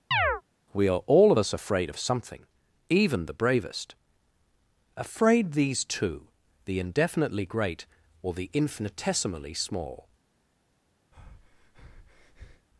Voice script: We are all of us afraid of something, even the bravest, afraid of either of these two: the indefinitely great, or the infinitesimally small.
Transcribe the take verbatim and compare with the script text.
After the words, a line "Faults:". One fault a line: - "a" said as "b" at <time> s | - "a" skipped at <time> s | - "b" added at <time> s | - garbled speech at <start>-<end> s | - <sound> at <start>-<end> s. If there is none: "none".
We are all of us afraid of something, even the bravest, afraid these two: the indefinitely great, or the infinitesimally small.
Faults:
- chirp at 0.1-0.4 s
- "of either of" skipped at 5.5 s
- breath at 11.1-12.7 s